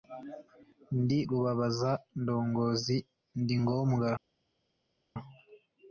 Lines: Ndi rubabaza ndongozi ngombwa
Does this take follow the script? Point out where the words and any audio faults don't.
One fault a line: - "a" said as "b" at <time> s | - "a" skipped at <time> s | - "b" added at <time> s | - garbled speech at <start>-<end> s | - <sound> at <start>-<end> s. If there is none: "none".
- "ndi" added at 3.4 s